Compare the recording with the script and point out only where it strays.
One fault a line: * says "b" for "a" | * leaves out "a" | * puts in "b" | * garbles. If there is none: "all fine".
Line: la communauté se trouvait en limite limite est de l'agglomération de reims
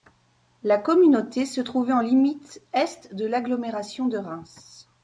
* leaves out "limite"